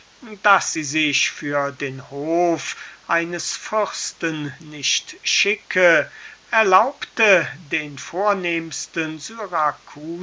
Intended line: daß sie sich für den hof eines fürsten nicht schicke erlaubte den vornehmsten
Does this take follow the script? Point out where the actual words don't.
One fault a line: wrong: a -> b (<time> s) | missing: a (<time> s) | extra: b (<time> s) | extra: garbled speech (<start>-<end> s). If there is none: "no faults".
no faults